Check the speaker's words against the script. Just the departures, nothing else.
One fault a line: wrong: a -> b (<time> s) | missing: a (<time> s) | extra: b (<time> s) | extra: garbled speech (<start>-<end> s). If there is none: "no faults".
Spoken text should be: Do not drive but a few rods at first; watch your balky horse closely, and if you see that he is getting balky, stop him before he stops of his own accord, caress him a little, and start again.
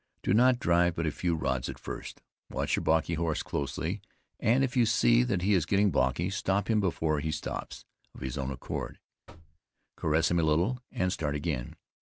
no faults